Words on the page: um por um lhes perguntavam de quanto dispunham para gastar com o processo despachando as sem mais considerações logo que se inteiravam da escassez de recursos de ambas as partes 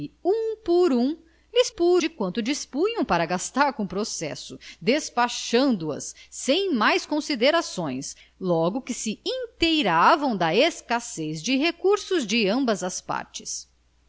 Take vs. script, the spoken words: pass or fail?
fail